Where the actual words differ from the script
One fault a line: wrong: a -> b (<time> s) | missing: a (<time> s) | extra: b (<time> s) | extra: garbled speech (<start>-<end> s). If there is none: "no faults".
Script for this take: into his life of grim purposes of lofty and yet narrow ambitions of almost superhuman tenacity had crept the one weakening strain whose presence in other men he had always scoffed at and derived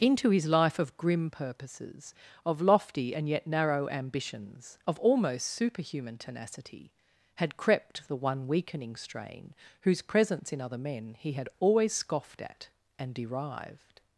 no faults